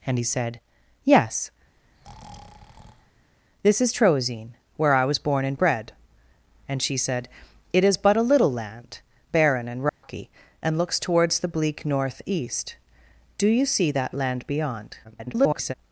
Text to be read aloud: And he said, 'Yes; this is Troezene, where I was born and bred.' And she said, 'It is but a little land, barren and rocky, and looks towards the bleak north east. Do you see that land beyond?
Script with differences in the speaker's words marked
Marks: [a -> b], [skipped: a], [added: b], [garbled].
And he said, 'Yes; this is Troezene, where I was born and bred.' And she said, 'It is but a little land, barren and rocky, and looks towards the bleak north east. Do you see that land beyond? [garbled]